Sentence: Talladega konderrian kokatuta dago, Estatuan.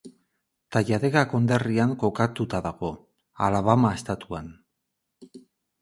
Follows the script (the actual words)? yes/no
no